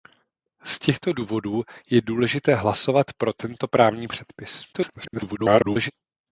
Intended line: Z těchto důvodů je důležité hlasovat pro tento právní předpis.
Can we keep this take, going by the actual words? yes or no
no